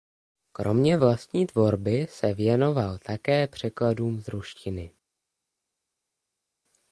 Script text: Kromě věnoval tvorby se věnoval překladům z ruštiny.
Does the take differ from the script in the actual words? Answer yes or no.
yes